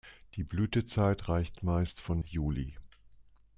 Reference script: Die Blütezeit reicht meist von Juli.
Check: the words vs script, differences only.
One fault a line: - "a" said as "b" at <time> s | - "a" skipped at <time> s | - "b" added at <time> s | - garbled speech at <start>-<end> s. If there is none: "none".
none